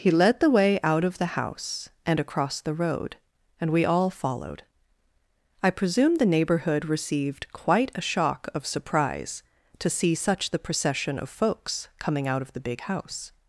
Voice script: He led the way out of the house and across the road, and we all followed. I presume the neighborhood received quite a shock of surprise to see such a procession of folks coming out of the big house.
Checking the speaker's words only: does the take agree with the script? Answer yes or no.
no